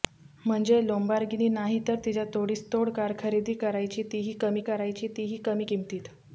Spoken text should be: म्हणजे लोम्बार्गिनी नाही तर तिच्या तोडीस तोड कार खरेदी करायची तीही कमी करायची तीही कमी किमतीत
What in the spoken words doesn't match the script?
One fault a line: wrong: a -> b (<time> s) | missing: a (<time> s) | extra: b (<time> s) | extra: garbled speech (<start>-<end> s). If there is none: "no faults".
no faults